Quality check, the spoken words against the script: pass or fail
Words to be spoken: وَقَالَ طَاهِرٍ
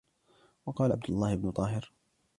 fail